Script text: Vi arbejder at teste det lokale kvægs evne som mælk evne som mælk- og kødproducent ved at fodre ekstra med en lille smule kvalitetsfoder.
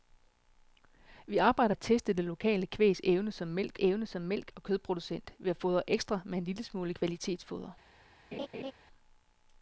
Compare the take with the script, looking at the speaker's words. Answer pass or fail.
pass